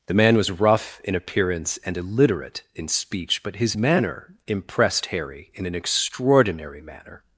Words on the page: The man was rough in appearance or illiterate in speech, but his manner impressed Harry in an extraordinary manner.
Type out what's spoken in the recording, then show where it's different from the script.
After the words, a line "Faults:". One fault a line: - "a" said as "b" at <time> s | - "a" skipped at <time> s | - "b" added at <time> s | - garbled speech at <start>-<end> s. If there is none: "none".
The man was rough in appearance and illiterate in speech, but his manner impressed Harry in an extraordinary manner.
Faults:
- "or" said as "and" at 1.9 s